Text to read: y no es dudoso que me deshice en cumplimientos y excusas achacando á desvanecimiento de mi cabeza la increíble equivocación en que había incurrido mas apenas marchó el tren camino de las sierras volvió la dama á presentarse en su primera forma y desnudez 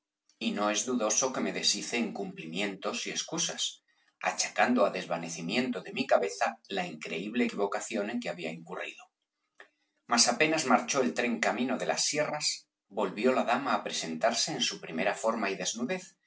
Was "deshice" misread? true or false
false